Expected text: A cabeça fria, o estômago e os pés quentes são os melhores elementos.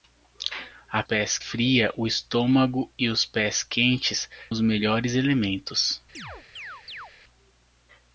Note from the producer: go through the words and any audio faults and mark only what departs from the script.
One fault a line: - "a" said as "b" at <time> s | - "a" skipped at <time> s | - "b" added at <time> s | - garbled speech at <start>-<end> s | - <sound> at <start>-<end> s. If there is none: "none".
- "cabeça" said as "pés" at 1.0 s
- "são" skipped at 4.3 s
- chirp at 6.1-7.1 s